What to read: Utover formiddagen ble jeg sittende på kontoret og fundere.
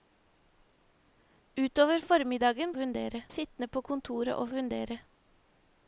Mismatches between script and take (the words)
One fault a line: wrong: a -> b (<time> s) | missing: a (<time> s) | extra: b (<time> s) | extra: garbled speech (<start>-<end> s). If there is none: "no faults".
wrong: ble -> fundere (2.8 s)